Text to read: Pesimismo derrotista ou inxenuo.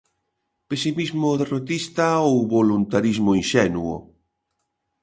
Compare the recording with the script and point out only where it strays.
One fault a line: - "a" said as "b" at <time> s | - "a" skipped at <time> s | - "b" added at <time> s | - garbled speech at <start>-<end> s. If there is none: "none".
- "voluntarismo" added at 2.5 s